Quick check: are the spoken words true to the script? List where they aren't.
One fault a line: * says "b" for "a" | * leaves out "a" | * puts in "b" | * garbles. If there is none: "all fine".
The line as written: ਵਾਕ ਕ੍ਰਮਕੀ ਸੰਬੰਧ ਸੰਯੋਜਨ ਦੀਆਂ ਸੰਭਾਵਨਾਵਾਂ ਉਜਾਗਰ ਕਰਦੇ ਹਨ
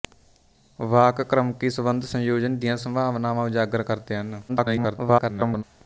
* garbles